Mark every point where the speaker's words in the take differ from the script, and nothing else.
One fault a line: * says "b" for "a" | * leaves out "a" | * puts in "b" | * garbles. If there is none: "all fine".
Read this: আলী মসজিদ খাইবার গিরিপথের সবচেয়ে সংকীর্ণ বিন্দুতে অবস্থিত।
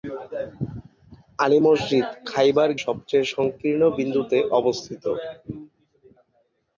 * leaves out "গিরিপথের"